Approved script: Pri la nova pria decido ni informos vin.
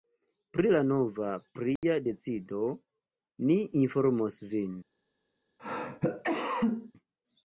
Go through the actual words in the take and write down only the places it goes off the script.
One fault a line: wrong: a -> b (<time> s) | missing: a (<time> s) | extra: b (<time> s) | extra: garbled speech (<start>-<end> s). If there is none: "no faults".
no faults